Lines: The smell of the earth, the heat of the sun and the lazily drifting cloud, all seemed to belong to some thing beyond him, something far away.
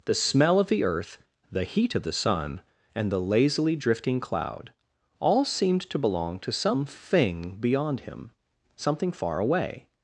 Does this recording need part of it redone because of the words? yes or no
no